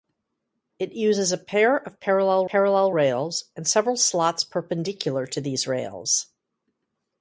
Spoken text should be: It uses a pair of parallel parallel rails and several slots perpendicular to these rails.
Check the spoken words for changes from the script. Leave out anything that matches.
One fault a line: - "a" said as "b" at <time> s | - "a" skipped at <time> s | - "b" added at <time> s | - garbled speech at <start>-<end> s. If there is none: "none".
none